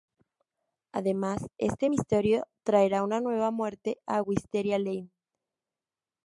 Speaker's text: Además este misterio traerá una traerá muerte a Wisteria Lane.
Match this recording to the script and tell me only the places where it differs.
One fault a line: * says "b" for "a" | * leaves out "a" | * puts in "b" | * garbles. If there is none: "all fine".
* says "nueva" for "traerá"